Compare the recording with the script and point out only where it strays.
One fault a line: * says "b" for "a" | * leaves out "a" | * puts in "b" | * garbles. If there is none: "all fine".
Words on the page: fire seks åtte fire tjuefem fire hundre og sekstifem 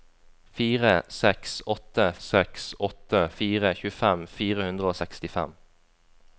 * puts in "seks åtte"